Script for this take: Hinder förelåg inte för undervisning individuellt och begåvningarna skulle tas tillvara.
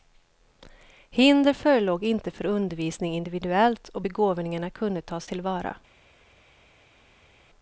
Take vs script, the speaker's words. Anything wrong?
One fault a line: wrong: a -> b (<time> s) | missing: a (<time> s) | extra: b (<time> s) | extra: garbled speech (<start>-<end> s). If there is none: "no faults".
wrong: skulle -> kunde (4.7 s)